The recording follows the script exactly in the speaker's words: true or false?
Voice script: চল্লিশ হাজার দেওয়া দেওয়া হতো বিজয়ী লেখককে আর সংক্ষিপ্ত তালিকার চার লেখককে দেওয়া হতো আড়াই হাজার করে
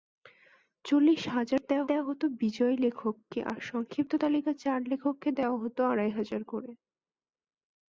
true